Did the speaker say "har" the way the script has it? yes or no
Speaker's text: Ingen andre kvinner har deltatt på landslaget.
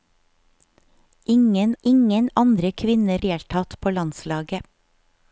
no